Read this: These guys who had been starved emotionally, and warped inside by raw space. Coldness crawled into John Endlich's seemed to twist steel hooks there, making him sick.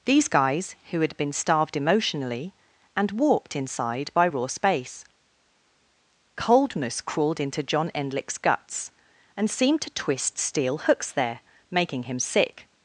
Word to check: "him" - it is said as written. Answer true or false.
true